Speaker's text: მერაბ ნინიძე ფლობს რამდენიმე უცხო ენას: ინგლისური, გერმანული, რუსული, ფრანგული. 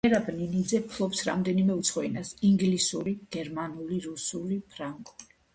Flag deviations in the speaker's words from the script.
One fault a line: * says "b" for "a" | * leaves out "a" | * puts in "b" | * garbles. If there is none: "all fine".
all fine